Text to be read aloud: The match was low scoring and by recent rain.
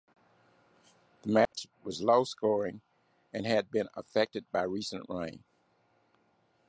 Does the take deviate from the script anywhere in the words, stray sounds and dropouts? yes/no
yes